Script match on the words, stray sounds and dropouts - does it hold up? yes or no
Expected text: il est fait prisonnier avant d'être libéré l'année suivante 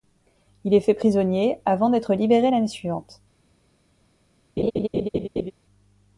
no